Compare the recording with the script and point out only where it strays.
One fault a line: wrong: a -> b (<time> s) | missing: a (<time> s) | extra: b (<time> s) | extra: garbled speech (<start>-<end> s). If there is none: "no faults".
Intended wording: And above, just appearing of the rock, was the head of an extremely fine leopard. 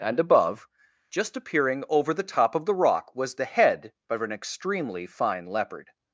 extra: over the top (1.9 s)